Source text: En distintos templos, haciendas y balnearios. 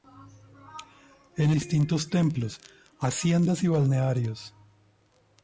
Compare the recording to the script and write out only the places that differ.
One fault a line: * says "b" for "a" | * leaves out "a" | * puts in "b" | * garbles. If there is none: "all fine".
all fine